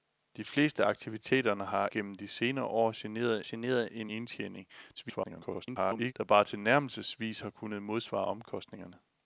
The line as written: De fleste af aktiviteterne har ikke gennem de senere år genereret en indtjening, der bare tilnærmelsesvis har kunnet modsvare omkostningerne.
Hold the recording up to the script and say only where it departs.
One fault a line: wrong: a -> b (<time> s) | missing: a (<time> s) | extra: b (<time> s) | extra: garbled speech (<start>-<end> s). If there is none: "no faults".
missing: ikke (1.9 s)
extra: genereret (3.4 s)
extra: garbled speech (5.0-6.1 s)